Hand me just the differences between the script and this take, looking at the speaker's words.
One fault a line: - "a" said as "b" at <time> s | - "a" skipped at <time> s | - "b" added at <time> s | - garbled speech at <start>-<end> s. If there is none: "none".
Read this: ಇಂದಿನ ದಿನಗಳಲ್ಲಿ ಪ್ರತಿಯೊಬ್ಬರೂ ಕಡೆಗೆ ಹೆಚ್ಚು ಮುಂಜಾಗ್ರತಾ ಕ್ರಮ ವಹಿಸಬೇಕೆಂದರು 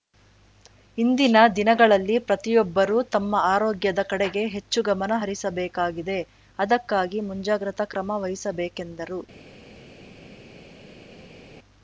- "ತಮ್ಮ ಆರೋಗ್ಯದ" added at 3.1 s
- "ಗಮನ ಹರಿಸಬೇಕಾಗಿದೆ ಅದಕ್ಕಾಗಿ" added at 4.9 s